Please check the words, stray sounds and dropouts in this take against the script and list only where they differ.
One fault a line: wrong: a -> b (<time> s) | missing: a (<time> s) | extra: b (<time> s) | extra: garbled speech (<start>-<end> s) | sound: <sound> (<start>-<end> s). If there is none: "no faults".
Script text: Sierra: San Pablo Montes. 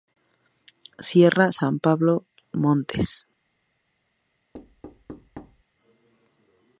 sound: thud (4.5-5.6 s)